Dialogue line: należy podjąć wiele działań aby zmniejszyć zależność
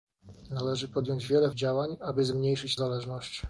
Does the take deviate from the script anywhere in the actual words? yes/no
no